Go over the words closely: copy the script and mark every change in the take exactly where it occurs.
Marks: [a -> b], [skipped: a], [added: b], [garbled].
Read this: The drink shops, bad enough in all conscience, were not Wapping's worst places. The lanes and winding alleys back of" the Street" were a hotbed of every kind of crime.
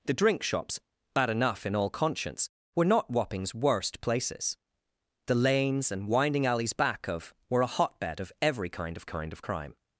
The drink shops, bad enough in all conscience, were not Wapping's worst places. The lanes and winding alleys back of" [skipped: the Street"] were a hotbed of every kind of [added: kind of] crime.